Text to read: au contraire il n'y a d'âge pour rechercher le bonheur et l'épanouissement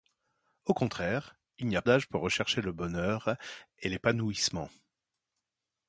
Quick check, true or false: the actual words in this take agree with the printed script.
true